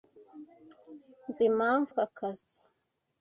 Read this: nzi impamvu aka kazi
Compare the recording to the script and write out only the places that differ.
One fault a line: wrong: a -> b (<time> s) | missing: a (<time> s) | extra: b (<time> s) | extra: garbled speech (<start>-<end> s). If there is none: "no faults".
no faults